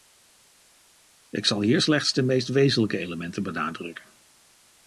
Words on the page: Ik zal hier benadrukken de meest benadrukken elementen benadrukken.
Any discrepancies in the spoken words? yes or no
yes